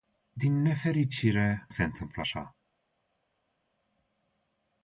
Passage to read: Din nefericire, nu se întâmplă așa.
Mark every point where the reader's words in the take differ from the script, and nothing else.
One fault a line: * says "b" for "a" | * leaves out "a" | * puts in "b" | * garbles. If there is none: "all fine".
* leaves out "nu"